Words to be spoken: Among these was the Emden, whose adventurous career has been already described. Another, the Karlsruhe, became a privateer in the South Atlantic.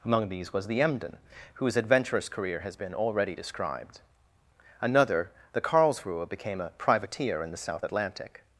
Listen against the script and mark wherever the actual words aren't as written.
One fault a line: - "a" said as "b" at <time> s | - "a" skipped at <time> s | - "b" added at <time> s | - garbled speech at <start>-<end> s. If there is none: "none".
none